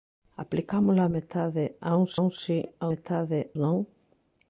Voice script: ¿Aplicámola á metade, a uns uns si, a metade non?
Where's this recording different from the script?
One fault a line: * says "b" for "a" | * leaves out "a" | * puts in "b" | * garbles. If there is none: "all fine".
all fine